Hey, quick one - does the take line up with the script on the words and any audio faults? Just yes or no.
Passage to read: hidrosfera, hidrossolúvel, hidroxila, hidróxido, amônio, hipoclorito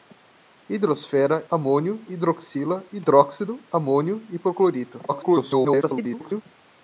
no